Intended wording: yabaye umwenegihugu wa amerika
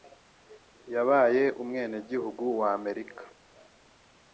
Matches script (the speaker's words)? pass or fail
pass